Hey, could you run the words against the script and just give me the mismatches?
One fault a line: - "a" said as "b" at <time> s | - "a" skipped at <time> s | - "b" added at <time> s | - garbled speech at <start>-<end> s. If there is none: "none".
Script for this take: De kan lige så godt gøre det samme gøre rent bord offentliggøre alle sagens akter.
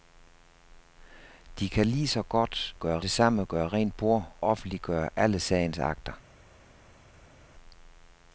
none